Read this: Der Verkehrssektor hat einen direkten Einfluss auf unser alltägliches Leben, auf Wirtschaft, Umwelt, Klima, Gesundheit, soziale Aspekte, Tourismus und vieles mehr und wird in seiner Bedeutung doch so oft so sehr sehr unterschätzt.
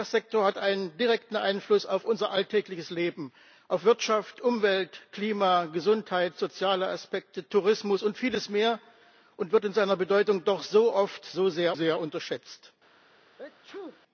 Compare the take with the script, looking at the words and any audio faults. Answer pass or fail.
fail